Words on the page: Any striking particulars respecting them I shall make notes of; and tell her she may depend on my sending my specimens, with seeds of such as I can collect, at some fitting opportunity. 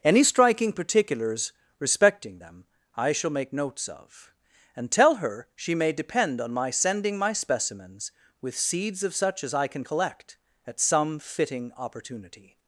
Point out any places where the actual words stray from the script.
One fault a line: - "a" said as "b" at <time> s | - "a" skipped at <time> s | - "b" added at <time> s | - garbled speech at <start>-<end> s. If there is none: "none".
none